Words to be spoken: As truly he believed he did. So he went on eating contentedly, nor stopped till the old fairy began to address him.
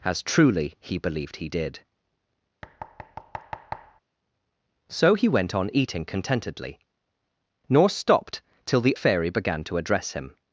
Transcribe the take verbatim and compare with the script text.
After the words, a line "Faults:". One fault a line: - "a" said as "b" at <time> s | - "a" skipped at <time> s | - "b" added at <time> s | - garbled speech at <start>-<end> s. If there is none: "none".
As truly he believed he did. So he went on eating contentedly, nor stopped till the fairy began to address him.
Faults:
- "old" skipped at 9.0 s